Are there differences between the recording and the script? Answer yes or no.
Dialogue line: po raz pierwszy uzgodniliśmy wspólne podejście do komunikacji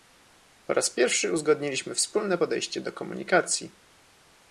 no